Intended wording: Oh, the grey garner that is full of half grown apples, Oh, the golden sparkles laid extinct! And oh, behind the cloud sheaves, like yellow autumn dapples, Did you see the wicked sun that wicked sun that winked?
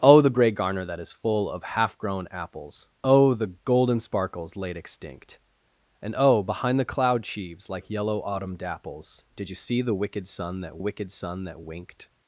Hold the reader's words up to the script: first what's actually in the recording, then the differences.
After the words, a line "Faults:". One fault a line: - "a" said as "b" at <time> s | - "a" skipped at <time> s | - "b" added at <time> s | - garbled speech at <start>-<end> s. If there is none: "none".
Oh, the grey garner that is full of half grown apples, Oh, the golden sparkles laid extinct! And oh, behind the cloud sheaves, like yellow autumn dapples, Did you see the wicked sun that wicked sun that winked?
Faults:
none